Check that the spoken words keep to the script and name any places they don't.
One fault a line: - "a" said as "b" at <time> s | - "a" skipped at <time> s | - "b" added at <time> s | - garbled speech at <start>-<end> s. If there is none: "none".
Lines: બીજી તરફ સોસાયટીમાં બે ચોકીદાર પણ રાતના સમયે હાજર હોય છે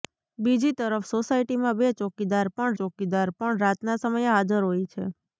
- "ચોકીદાર પણ" added at 2.8 s